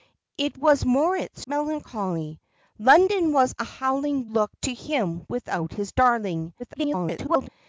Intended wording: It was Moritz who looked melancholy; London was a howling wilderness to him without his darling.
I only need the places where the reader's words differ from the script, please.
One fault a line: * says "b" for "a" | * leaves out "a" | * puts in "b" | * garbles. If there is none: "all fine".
* leaves out "who looked"
* says "looked" for "wilderness"
* garbles